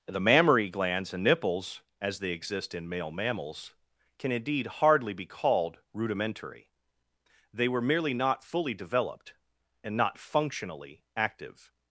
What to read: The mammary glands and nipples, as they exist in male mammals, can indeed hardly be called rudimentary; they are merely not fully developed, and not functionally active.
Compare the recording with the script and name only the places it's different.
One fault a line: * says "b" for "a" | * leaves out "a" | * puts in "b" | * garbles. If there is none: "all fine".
* says "were" for "are"